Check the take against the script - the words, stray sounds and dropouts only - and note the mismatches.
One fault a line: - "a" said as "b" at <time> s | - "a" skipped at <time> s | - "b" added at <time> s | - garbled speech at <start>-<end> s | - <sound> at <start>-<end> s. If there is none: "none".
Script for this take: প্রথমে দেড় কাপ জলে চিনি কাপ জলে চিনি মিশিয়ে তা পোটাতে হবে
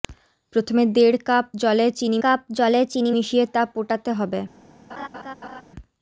- laugh at 4.9-5.6 s